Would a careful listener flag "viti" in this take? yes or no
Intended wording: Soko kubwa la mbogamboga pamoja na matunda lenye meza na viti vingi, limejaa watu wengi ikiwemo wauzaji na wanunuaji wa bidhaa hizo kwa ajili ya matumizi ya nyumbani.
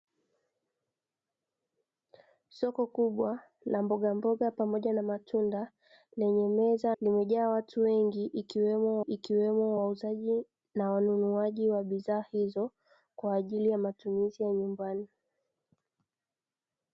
yes